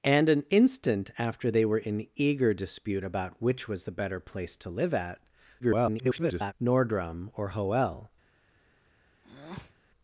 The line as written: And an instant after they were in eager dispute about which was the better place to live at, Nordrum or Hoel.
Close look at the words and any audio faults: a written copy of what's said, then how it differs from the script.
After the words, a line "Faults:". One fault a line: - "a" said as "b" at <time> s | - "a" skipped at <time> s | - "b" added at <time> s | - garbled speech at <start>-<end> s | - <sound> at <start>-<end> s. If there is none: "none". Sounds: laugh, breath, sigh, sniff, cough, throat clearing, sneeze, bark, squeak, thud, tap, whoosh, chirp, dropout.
And an instant after they were in eager dispute about which was the better place to live at, [garbled] Nordrum or Hoel.
Faults:
- garbled speech at 5.6-6.5 s
- breath at 9.2-9.8 s